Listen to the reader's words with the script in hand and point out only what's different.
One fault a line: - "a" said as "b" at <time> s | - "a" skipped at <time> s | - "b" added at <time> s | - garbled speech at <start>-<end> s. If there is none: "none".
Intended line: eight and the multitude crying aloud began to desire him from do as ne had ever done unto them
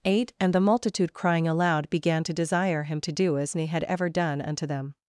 - "from" said as "to" at 3.0 s